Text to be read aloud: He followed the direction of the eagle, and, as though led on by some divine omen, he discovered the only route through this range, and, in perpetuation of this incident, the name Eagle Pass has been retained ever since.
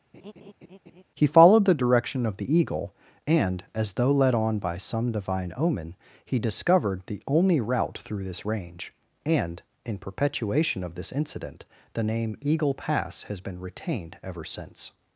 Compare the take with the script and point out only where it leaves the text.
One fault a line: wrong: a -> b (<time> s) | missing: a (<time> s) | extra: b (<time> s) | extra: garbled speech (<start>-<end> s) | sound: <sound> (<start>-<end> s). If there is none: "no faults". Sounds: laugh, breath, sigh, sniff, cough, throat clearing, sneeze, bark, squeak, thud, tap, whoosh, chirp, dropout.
sound: laugh (0.1-1.0 s)